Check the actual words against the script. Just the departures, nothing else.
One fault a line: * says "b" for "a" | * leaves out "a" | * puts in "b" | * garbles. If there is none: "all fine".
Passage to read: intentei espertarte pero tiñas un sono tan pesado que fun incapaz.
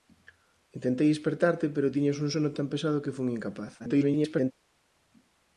* garbles